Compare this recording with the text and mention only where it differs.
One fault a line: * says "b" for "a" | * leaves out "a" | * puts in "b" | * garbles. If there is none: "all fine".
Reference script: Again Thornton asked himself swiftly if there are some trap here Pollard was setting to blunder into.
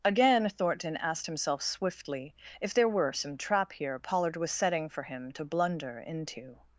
* says "were" for "are"
* puts in "for him"